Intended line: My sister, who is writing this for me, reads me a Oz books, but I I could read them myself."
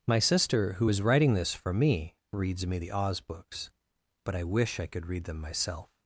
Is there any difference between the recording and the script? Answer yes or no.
yes